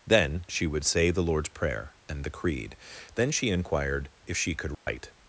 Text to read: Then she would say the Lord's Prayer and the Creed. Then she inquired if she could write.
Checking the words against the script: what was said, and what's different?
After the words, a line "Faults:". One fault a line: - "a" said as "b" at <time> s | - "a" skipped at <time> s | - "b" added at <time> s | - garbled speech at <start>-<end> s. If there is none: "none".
Then she would say the Lord's Prayer and the Creed. Then she inquired if she could write.
Faults:
none